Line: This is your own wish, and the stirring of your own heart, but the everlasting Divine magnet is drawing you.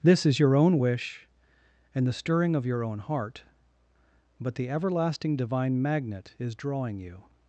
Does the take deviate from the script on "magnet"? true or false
false